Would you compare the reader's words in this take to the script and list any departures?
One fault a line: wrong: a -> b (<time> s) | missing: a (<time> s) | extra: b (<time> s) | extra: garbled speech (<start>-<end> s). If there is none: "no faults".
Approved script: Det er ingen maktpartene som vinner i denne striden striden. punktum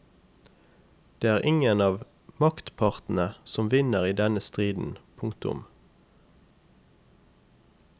extra: av (1.9 s)
missing: striden (5.0 s)